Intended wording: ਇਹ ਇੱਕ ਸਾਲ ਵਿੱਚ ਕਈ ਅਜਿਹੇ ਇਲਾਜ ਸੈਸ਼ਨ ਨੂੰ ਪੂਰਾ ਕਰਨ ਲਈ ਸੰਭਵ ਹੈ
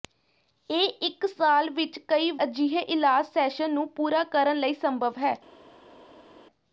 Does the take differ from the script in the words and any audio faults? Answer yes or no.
no